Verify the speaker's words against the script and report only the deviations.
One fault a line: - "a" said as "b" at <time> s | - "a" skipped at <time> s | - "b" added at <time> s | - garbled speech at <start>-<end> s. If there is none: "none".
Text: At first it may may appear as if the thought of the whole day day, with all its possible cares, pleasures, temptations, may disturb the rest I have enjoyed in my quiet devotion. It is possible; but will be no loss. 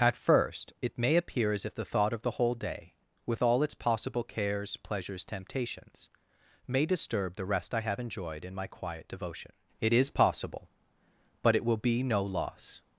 - "may" skipped at 1.1 s
- "day" skipped at 3.0 s
- "it" added at 11.5 s